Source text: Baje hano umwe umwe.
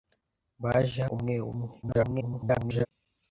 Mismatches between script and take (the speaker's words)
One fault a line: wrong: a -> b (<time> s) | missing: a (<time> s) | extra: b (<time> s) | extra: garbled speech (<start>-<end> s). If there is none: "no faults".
missing: hano (1.0 s)
extra: garbled speech (1.8-2.9 s)